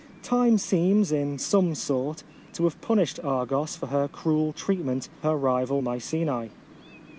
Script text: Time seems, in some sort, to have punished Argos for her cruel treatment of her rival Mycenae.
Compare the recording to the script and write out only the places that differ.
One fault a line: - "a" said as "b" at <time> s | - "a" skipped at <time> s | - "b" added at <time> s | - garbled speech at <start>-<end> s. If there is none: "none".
- "of" skipped at 5.1 s